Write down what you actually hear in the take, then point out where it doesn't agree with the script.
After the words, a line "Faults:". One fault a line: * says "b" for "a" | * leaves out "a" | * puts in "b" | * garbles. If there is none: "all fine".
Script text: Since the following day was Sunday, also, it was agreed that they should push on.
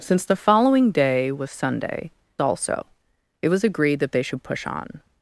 Since the following day was Sunday, also, it was agreed that they should push on.
Faults:
all fine